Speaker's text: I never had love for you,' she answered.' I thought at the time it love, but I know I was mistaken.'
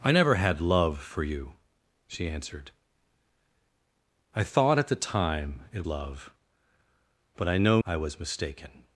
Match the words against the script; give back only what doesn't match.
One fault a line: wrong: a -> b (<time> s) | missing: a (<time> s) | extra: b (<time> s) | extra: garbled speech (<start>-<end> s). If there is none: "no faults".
no faults